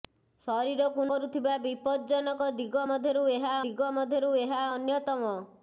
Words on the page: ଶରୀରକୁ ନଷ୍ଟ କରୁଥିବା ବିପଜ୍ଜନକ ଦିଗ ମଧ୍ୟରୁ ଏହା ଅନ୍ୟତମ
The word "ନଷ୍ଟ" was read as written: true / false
false